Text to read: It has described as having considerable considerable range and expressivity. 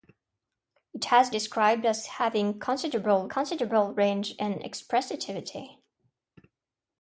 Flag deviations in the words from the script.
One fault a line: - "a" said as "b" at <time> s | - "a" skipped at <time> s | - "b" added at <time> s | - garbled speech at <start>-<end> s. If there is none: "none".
none